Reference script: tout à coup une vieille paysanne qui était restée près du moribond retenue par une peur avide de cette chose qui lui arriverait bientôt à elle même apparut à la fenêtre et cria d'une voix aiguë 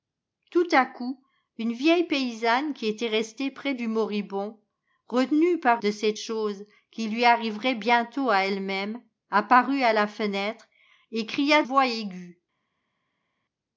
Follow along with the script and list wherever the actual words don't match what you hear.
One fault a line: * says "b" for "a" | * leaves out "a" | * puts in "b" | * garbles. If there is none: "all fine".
* leaves out "une peur avide"
* leaves out "d'une"